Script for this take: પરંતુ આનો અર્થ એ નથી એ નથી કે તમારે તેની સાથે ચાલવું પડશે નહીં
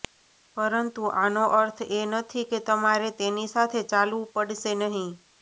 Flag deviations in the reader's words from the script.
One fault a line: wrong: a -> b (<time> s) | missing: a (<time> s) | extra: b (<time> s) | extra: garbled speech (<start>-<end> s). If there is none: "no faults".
missing: એ નથી (2.5 s)